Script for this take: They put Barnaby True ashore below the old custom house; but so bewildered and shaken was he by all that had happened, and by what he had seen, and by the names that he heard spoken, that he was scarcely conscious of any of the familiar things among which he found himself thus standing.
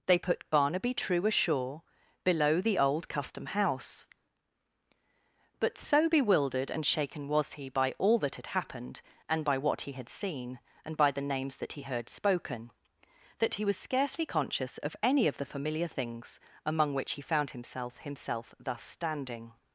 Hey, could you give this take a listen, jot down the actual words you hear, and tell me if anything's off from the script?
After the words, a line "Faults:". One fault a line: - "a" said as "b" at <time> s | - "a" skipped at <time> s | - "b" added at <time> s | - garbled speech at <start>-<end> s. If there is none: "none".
They put Barnaby True ashore below the old custom house; but so bewildered and shaken was he by all that had happened, and by what he had seen, and by the names that he heard spoken, that he was scarcely conscious of any of the familiar things among which he found himself himself thus standing.
Faults:
- "himself" added at 18.0 s